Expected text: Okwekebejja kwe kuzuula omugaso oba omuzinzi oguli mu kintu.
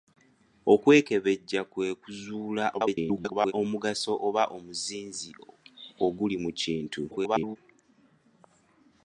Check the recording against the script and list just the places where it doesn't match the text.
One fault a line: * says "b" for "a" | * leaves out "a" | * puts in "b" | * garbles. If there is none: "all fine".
* garbles
* garbles